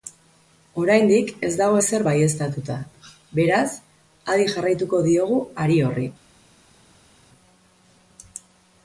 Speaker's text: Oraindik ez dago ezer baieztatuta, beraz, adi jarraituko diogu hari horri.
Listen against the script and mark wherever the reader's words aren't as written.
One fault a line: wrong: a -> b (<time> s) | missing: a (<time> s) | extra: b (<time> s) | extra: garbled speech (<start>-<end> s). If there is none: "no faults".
no faults